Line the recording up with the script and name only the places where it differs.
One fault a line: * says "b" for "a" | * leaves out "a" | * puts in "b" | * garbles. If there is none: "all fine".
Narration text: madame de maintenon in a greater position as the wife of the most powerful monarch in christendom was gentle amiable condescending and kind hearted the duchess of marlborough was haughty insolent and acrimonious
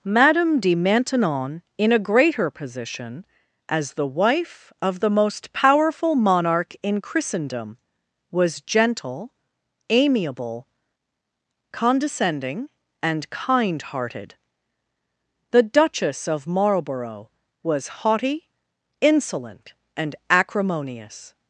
all fine